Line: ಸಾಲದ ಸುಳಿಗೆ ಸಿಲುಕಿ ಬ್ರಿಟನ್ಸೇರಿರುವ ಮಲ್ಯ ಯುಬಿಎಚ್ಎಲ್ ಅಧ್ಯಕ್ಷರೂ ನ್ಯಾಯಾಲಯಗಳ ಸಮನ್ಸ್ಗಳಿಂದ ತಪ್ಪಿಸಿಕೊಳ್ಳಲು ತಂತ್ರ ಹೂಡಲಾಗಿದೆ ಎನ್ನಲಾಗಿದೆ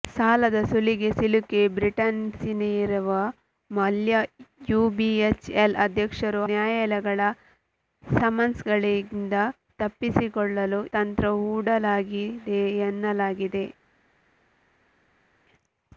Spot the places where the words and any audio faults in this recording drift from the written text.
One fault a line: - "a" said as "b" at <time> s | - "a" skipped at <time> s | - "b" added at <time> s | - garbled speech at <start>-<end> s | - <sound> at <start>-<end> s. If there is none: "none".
none